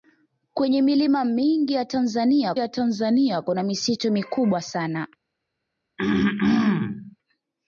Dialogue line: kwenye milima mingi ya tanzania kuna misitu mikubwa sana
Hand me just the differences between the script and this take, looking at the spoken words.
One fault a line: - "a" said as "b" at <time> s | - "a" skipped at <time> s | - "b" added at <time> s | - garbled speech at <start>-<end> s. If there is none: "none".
- "ya tanzania" added at 2.6 s